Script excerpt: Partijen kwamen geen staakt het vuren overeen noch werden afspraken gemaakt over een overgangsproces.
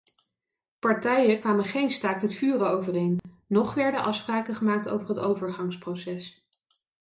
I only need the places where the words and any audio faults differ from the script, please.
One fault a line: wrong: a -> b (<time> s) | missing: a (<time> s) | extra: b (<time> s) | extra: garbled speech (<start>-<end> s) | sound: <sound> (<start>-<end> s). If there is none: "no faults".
sound: dropout (3.2-3.2 s)
wrong: een -> het (5.1 s)